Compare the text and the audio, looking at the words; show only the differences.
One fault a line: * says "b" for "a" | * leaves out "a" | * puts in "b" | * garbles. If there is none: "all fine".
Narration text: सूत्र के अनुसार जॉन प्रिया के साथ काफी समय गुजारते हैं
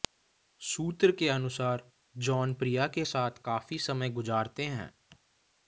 all fine